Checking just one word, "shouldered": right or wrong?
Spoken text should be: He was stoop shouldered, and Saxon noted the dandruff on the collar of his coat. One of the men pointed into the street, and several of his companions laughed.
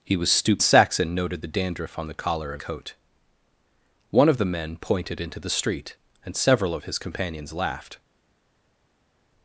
wrong